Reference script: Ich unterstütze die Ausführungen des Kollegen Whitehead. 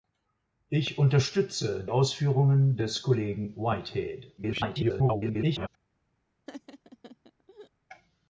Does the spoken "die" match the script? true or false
false